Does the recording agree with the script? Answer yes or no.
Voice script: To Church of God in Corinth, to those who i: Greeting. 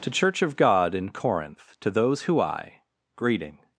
yes